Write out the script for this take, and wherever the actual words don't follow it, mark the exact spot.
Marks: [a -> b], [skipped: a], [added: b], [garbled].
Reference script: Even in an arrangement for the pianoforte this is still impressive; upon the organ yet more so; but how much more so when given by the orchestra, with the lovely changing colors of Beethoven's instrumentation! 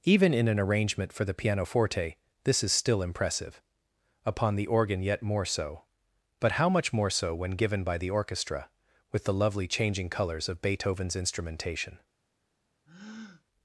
Even in an arrangement for the pianoforte this is still impressive; upon the organ yet more so; but how much more so when given by the orchestra, with the lovely changing colors of Beethoven's instrumentation!